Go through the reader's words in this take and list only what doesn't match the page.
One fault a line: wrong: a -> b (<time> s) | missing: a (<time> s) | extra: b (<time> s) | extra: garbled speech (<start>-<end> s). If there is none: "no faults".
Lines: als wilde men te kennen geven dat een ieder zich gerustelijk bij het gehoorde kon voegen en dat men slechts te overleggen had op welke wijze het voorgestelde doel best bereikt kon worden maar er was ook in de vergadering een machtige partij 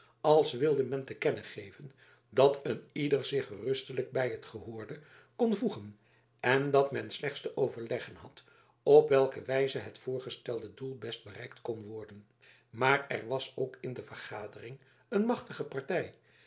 no faults